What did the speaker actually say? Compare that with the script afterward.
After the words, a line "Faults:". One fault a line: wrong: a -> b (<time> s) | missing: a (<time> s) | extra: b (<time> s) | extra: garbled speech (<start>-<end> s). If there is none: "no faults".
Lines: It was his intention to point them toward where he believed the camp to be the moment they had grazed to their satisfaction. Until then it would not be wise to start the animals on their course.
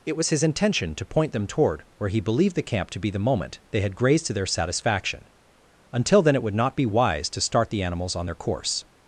It was his intention to point them toward where he believed the camp to be the moment they had grazed to their satisfaction. Until then it would not be wise to start the animals on their course.
Faults:
no faults